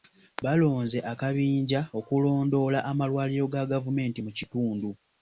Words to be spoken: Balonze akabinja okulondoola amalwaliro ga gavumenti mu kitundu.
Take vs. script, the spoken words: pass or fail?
pass